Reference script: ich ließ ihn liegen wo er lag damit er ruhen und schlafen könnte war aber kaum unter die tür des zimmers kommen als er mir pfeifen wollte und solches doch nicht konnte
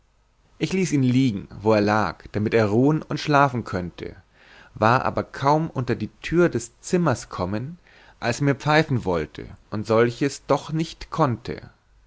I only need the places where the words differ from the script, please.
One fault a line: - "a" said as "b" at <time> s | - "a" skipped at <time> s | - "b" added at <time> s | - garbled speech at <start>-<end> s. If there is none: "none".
none